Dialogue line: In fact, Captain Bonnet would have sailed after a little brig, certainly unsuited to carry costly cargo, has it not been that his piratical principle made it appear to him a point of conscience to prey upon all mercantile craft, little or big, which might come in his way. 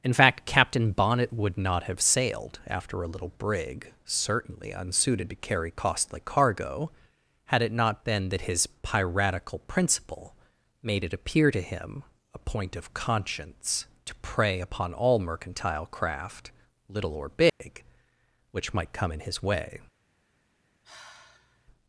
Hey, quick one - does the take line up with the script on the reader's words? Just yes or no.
no